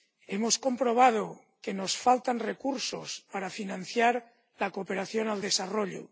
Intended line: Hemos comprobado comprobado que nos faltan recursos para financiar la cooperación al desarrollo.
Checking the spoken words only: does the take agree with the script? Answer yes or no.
no